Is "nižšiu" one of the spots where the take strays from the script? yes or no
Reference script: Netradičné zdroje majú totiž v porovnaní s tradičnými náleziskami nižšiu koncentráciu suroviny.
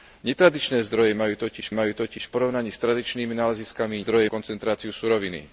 yes